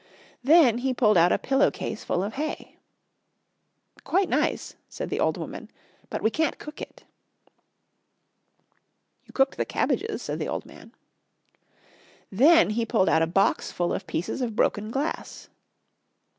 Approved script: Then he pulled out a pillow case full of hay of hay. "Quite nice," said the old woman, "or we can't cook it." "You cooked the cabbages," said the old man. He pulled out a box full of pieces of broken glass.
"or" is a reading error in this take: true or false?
true